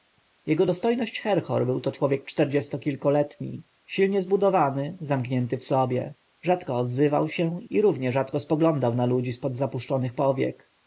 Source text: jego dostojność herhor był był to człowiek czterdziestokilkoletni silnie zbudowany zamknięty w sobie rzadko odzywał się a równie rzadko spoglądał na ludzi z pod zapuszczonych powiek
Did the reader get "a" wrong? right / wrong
wrong